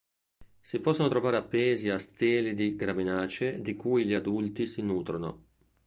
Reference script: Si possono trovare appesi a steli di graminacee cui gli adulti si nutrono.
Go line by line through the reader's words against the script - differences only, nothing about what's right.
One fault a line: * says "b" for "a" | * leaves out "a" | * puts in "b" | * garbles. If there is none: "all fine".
* puts in "di"